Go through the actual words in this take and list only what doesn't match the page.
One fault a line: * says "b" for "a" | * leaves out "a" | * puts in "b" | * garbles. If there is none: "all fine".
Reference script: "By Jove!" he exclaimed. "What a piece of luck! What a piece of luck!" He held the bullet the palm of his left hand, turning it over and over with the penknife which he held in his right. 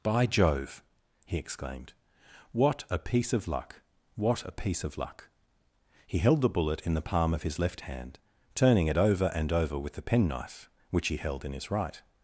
* puts in "in"